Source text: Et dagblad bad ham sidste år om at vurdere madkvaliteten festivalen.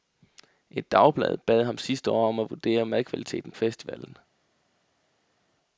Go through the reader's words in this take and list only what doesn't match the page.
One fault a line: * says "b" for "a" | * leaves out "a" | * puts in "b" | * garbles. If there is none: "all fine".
all fine